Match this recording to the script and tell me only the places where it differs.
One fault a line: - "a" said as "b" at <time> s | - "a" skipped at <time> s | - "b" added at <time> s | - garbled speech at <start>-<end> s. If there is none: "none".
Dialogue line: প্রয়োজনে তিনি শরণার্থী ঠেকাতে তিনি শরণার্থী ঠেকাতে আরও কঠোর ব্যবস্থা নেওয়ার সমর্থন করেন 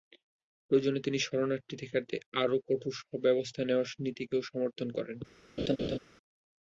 - "তিনি শরণার্থী ঠেকাতে" skipped at 2.2 s
- "নীতিকেও" added at 4.0 s